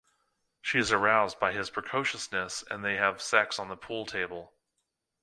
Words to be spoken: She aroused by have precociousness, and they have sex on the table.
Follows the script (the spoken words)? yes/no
no